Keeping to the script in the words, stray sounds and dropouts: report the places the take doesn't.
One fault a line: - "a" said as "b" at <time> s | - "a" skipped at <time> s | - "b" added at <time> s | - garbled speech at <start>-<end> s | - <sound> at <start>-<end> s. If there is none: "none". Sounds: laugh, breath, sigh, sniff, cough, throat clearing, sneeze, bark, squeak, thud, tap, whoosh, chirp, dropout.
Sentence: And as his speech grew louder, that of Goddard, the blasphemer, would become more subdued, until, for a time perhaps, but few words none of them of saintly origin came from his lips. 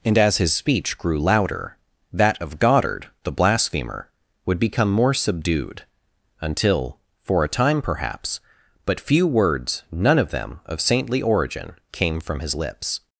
none